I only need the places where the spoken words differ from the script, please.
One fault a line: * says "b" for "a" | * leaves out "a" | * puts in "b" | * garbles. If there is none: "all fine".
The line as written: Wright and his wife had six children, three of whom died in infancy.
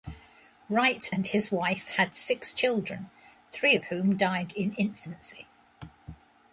all fine